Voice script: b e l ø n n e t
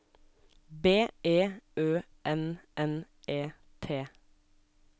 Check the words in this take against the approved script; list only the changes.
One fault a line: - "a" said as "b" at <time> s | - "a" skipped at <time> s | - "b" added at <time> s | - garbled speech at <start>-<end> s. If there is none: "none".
- "l" skipped at 1.4 s